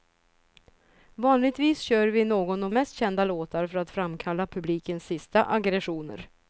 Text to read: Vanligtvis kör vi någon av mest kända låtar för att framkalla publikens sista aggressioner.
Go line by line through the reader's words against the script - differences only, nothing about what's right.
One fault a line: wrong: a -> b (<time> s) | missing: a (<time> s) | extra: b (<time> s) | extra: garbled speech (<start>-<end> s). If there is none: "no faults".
no faults